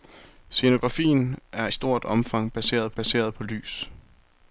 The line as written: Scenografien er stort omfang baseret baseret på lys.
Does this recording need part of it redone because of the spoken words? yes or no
no